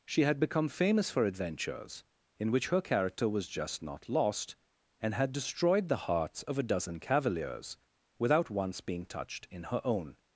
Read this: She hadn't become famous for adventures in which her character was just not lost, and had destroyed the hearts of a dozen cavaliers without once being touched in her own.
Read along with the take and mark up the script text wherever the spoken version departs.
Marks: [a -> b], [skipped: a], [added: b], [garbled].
She [hadn't -> had] become famous for adventures in which her character was just not lost, and had destroyed the hearts of a dozen cavaliers without once being touched in her own.